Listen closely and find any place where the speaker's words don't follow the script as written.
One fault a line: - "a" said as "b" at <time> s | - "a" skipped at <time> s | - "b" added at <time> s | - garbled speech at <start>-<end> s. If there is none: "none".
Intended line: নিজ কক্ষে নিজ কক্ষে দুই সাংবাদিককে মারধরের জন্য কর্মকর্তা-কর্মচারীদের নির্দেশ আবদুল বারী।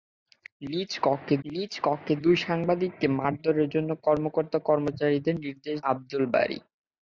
none